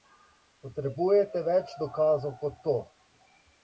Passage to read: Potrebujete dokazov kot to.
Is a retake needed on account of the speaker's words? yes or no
yes